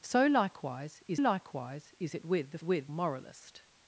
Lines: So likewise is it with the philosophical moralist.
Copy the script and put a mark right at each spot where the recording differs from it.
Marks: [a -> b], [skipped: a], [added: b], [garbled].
So likewise is [added: likewise is] it with the [philosophical -> with] moralist.